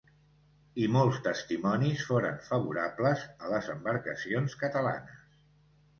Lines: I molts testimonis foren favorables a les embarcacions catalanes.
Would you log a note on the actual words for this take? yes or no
no